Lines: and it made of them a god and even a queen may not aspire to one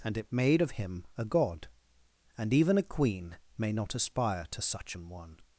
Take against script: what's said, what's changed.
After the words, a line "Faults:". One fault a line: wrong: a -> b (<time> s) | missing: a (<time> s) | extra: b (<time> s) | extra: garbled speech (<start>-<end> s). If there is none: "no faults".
and it made of him a god and even a queen may not aspire to such an one
Faults:
wrong: them -> him (0.7 s)
extra: such an (4.6 s)